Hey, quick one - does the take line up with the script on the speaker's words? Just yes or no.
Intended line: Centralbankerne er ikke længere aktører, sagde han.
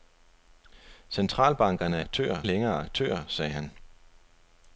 no